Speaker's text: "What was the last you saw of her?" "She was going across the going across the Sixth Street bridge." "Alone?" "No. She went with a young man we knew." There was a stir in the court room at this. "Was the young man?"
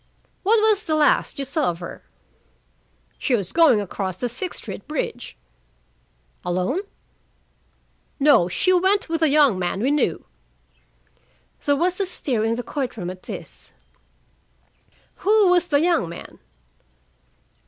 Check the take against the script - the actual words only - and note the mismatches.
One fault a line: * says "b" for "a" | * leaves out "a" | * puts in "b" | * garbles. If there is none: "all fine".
* leaves out "going across the"
* puts in "Who"